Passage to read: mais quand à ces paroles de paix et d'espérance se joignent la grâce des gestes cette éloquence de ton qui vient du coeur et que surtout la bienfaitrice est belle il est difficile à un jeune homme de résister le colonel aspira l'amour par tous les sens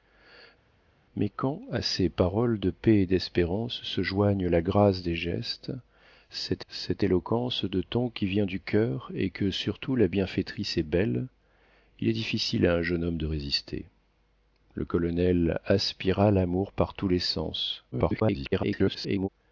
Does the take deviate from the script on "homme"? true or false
false